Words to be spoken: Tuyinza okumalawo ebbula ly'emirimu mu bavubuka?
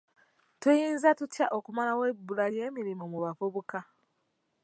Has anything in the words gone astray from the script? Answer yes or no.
yes